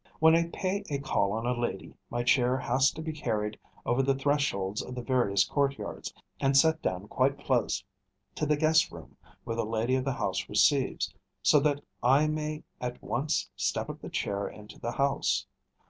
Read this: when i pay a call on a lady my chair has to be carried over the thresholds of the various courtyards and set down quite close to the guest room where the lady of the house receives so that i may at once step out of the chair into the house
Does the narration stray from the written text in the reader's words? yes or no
yes